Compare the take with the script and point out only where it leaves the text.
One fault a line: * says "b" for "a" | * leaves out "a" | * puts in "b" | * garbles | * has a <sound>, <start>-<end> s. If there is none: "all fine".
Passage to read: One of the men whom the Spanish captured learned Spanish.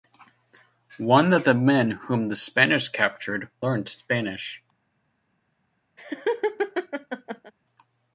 * has a laugh, 6.0-7.5 s